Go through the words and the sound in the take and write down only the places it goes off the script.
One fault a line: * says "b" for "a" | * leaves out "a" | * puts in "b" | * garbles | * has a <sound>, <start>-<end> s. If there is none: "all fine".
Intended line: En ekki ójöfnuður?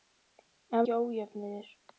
all fine